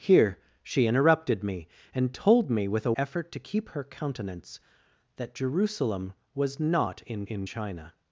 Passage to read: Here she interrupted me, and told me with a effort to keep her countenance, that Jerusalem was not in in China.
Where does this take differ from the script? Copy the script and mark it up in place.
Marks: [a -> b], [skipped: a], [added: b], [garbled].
Here she interrupted me, and told me with a effort to keep her countenance, that Jerusalem was not in in China.